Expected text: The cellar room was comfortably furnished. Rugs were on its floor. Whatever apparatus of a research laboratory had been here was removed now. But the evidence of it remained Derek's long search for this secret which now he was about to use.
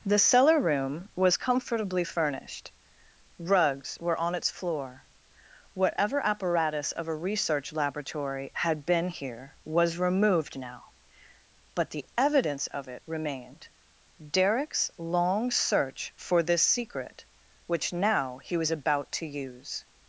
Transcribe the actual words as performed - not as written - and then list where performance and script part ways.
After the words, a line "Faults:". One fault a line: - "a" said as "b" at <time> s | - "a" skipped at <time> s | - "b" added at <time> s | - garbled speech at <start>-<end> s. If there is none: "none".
The cellar room was comfortably furnished. Rugs were on its floor. Whatever apparatus of a research laboratory had been here was removed now. But the evidence of it remained Derek's long search for this secret which now he was about to use.
Faults:
none